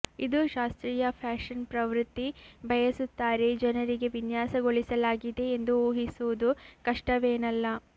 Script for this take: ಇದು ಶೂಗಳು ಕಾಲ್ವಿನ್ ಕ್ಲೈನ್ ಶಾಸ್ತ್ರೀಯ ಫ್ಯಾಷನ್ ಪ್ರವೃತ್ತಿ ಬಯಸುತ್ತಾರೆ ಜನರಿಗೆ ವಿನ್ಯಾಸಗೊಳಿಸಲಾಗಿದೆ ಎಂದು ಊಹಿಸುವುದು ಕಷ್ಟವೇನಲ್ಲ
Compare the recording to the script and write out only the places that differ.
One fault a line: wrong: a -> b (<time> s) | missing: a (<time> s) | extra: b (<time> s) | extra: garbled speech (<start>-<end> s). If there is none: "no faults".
missing: ಶೂಗಳು ಕಾಲ್ವಿನ್ ಕ್ಲೈನ್ (0.4 s)